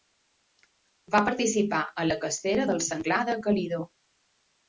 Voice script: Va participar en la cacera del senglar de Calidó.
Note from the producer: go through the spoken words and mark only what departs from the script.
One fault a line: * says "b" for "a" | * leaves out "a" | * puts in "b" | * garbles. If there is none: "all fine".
all fine